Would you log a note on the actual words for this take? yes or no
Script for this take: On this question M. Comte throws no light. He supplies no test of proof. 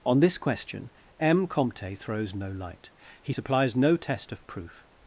no